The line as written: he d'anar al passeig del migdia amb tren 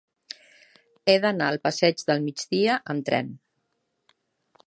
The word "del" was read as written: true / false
true